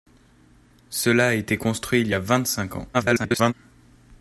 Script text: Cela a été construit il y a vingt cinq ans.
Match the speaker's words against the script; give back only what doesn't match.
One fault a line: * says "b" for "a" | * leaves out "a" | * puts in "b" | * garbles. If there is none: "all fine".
* garbles